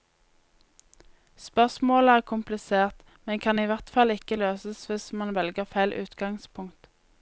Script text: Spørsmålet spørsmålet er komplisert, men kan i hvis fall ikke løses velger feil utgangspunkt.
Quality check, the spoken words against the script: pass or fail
fail